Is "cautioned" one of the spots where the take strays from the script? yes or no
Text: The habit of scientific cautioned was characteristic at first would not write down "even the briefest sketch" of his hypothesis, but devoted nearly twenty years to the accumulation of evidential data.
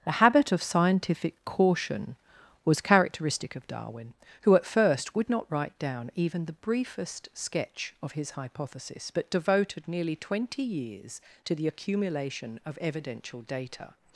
yes